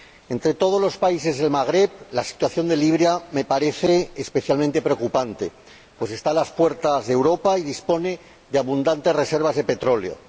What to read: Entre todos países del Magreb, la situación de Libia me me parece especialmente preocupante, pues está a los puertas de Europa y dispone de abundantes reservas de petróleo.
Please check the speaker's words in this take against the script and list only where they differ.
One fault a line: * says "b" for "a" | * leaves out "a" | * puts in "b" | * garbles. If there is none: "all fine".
* puts in "los"
* leaves out "me"
* says "las" for "los"